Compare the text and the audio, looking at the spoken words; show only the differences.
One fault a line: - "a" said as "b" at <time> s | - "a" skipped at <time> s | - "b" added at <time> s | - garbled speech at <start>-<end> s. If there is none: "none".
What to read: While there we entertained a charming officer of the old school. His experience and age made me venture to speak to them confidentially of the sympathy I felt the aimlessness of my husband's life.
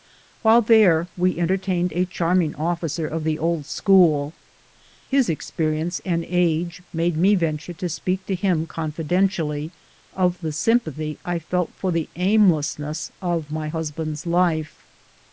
- "them" said as "him" at 8.3 s
- "for" added at 11.8 s